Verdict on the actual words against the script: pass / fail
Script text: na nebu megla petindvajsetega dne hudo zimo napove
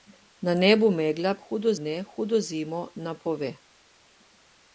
fail